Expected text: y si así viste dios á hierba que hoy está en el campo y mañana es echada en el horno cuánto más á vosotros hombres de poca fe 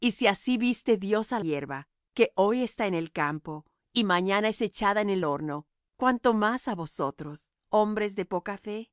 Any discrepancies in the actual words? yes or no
no